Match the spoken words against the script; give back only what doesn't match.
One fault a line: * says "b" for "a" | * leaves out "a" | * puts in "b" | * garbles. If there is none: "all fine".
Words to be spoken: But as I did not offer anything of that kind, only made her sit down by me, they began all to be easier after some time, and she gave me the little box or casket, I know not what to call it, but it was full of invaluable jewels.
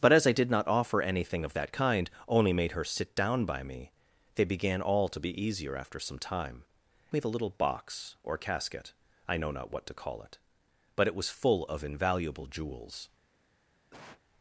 * leaves out "and she gave"